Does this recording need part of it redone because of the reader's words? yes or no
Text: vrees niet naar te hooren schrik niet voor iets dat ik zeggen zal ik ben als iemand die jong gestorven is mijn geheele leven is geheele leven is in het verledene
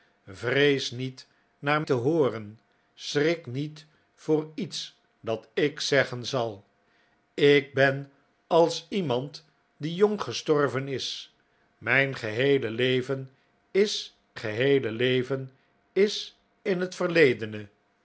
no